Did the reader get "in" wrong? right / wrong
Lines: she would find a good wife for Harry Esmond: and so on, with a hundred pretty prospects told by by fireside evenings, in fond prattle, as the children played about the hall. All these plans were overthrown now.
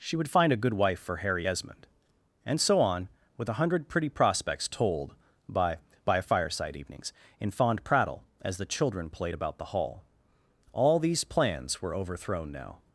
right